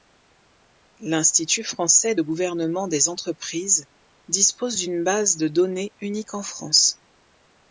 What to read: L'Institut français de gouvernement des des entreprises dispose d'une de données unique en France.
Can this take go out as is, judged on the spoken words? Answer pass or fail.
fail